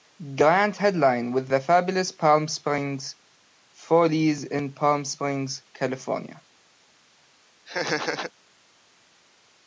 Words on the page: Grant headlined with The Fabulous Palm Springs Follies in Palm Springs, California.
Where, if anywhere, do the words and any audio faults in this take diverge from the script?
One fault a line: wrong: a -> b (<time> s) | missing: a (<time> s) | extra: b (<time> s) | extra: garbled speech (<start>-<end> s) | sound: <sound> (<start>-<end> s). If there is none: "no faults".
sound: laugh (7.7-8.3 s)